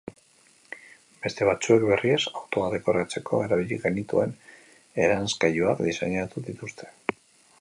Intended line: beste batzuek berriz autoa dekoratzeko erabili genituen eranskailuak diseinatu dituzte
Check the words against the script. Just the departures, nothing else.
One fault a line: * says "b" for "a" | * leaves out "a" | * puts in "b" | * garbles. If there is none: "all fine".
all fine